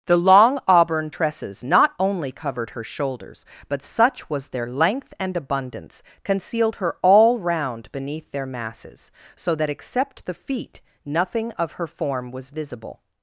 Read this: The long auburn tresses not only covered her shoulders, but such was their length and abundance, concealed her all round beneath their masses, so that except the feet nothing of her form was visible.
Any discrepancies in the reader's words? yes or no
no